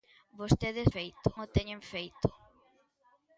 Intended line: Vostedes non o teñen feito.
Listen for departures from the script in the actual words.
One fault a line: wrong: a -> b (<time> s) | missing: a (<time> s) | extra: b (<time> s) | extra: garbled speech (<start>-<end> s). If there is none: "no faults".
wrong: non -> feito (0.9 s)